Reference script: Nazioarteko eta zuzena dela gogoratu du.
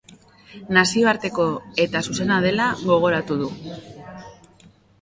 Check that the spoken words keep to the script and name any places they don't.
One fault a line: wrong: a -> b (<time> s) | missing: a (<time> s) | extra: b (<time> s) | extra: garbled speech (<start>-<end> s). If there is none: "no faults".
no faults